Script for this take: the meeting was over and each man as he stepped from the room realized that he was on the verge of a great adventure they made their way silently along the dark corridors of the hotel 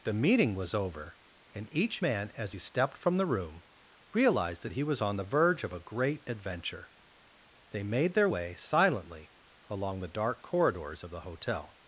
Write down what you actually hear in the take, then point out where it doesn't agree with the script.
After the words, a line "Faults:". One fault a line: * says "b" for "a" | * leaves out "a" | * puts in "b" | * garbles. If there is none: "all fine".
the meeting was over and each man as he stepped from the room realized that he was on the verge of a great adventure they made their way silently along the dark corridors of the hotel
Faults:
all fine